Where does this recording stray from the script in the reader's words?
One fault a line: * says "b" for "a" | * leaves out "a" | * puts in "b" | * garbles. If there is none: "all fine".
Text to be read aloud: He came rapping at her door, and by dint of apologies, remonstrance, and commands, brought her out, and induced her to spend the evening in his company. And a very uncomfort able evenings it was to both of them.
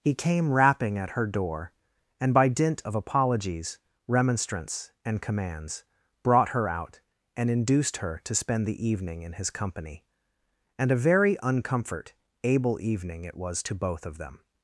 * says "evening" for "evenings"